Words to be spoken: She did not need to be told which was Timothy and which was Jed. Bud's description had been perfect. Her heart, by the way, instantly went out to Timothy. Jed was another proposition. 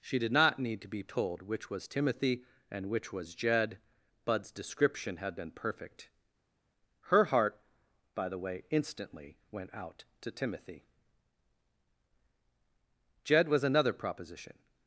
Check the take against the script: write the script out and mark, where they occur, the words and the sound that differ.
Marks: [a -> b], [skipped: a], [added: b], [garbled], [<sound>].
She did not need to be told which was Timothy and which was Jed. Bud's description had been perfect. Her heart, by the way, instantly went out to Timothy. Jed was another proposition.